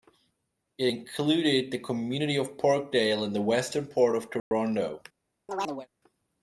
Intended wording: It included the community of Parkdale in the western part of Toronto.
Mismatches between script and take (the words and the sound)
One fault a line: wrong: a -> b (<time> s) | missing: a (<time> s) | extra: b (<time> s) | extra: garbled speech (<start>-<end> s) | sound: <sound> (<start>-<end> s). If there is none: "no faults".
sound: dropout (4.4-4.5 s)
sound: chirp (5.5-5.9 s)